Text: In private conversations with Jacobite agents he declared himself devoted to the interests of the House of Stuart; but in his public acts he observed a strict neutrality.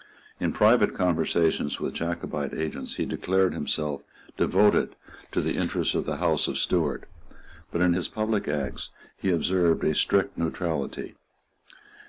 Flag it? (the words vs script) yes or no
no